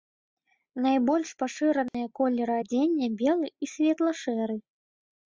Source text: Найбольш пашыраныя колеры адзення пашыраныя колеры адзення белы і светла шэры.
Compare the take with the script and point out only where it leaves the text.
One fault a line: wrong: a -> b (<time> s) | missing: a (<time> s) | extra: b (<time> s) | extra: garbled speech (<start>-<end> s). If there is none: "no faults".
missing: пашыраныя колеры адзення (3.1 s)